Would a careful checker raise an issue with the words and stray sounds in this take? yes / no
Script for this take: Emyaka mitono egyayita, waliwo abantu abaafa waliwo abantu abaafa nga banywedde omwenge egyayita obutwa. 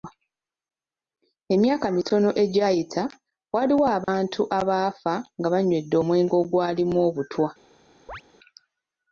yes